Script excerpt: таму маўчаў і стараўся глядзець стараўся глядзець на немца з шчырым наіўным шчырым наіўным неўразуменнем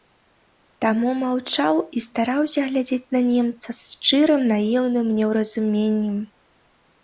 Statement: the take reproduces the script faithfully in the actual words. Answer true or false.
false